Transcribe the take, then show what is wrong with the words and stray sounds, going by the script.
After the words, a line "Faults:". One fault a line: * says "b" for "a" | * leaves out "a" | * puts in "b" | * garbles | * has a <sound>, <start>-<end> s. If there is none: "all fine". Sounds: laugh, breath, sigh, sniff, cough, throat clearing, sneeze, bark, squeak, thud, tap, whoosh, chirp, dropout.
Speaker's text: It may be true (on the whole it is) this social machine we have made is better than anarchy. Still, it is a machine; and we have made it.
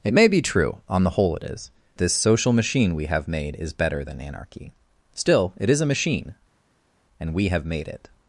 It may be true (on the whole it is) this social machine we have made is better than anarchy. Still, it is a machine; and we have made it.
Faults:
all fine